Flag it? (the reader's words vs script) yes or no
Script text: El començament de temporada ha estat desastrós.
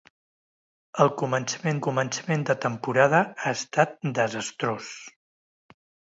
yes